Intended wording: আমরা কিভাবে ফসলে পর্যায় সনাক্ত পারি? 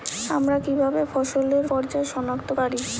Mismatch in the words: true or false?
false